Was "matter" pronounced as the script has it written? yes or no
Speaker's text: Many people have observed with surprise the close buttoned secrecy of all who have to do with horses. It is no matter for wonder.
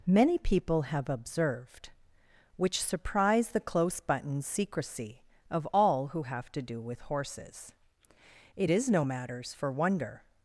no